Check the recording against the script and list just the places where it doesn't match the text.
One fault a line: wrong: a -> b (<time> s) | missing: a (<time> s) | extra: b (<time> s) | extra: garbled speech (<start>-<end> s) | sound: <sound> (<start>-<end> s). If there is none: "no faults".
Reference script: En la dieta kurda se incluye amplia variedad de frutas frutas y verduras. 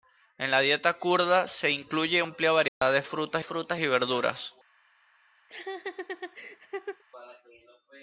sound: dropout (2.7-2.8 s)
sound: laugh (5.5-7.0 s)